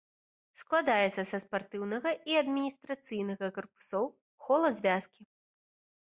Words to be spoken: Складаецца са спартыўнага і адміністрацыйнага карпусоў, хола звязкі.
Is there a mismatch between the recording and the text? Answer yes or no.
no